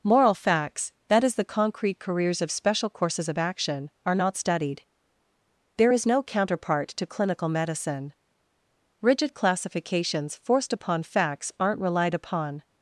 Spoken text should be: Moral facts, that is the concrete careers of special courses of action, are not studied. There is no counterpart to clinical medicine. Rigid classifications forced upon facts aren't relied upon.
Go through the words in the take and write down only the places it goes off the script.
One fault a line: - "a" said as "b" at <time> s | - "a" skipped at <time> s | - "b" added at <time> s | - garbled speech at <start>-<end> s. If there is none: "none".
none